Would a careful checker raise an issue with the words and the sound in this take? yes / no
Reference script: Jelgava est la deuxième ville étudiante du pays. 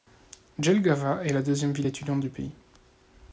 no